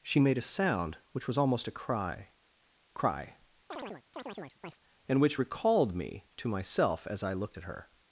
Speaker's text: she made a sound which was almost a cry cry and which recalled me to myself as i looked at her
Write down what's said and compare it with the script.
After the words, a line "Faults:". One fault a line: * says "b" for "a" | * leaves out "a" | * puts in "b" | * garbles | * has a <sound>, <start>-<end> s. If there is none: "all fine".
she made a sound which was almost a cry cry and which recalled me to myself as i looked at her
Faults:
* has a chirp, 3.7-4.8 s